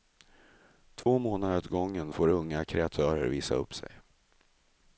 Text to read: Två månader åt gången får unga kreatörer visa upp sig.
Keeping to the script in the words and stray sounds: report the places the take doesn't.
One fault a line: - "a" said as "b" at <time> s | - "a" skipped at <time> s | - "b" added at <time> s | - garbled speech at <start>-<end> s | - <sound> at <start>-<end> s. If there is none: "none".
- dropout at 1.0-1.1 s